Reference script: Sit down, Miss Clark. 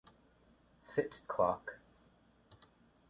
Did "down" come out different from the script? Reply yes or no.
yes